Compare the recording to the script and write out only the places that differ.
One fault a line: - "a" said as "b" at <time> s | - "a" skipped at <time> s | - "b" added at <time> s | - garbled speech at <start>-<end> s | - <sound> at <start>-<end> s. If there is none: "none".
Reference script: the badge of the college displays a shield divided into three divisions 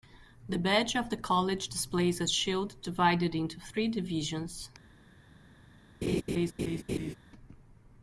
- laugh at 6.0-7.2 s